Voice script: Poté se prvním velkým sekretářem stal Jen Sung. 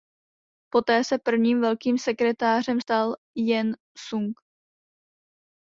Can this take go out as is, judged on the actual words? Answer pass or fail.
pass